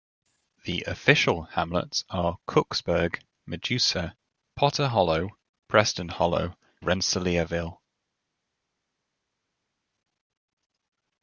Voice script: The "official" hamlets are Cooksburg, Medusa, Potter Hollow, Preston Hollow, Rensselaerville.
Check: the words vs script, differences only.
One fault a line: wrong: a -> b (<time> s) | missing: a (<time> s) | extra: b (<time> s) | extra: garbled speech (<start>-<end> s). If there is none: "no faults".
no faults